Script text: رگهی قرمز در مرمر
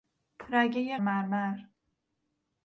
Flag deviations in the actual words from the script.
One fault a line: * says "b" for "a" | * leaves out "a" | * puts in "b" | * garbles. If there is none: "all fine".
* leaves out "قرمز در"